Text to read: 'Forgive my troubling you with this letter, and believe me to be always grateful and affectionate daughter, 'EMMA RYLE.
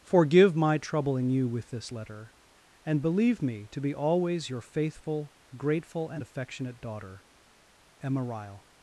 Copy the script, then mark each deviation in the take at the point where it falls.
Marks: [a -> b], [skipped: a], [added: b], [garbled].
'Forgive my troubling you with this letter, and believe me to be always [added: your faithful] grateful and affectionate daughter, 'EMMA RYLE.